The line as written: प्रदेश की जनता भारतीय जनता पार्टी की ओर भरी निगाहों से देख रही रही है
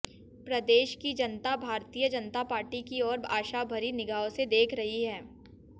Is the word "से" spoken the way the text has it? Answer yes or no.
yes